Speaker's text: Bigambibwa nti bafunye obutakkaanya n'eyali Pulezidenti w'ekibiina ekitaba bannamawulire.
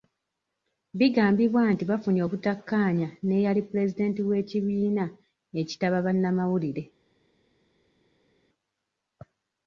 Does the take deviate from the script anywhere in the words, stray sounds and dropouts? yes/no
no